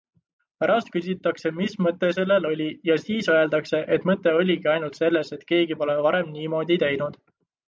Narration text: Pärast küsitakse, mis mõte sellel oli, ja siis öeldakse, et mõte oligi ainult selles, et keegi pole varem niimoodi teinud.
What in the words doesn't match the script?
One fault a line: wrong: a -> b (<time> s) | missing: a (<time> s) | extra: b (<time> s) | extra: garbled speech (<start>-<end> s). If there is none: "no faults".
no faults